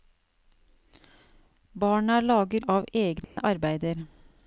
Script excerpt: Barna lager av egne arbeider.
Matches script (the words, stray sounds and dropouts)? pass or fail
fail